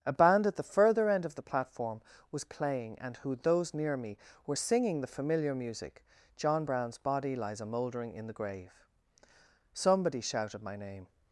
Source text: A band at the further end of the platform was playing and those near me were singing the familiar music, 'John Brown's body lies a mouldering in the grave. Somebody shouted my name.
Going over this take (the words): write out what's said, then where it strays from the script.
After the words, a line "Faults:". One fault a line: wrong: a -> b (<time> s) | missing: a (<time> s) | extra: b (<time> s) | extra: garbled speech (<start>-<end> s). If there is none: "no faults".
A band at the further end of the platform was playing and who those near me were singing the familiar music, 'John Brown's body lies a mouldering in the grave. Somebody shouted my name.
Faults:
extra: who (3.2 s)